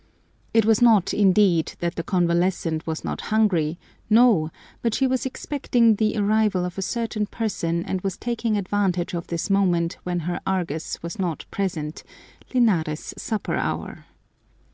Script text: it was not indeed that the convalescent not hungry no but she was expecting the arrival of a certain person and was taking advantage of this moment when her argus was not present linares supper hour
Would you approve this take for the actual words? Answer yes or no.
no